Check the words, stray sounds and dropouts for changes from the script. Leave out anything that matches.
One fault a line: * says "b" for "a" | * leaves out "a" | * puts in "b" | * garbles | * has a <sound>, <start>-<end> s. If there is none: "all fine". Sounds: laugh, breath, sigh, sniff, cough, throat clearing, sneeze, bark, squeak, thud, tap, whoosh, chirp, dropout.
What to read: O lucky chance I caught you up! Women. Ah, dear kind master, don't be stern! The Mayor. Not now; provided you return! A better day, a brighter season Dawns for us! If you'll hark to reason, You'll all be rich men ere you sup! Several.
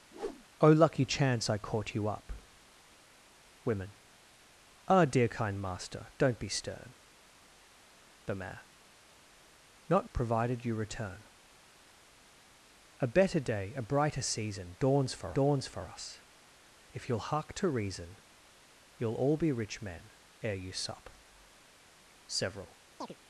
* has a whoosh, 0.1-0.5 s
* leaves out "now"
* puts in "Dawns for"
* has a chirp, 23.0-23.2 s